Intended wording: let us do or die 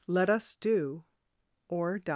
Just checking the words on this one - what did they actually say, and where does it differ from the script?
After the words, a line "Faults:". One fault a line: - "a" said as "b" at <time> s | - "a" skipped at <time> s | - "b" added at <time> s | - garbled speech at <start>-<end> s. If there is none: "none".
let us do or die
Faults:
none